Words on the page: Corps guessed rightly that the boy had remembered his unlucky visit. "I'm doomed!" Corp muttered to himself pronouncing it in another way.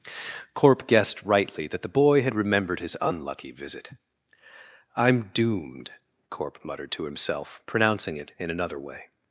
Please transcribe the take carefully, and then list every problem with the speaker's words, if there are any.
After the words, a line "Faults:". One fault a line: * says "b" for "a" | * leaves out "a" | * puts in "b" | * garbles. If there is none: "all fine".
Corp guessed rightly that the boy had remembered his unlucky visit. "I'm doomed!" Corp muttered to himself pronouncing it in another way.
Faults:
* says "Corp" for "Corps"